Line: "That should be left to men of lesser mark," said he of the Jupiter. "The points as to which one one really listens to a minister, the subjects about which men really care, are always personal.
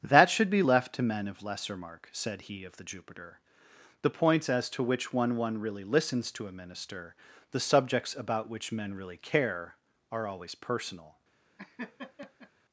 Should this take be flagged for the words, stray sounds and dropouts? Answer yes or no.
yes